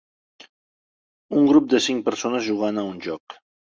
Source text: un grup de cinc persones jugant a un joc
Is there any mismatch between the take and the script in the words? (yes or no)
no